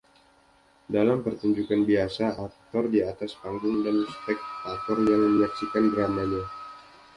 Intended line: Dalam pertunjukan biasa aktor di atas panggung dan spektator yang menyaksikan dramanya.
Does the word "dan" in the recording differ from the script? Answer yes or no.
no